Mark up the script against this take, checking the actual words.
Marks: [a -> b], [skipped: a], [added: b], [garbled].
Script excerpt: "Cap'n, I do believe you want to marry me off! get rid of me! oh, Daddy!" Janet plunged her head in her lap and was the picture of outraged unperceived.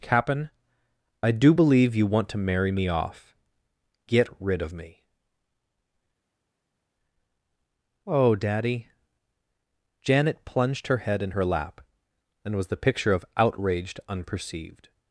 "Cap'n, I do believe you want to marry me off! get rid of me! oh, Daddy!" Janet plunged her head in her lap and was the picture of outraged unperceived.